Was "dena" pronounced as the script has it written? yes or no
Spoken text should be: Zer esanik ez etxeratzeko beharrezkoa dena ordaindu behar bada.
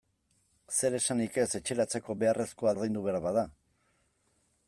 no